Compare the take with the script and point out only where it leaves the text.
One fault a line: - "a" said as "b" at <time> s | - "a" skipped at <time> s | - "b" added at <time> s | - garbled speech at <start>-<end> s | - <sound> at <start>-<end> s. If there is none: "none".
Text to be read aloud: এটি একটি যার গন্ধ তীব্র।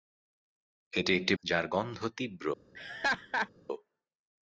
- laugh at 2.7-3.5 s